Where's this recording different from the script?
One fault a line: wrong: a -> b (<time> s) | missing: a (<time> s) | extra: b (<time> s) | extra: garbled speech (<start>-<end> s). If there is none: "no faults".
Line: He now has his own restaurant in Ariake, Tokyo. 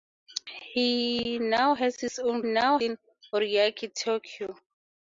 wrong: restaurant -> now (2.4 s)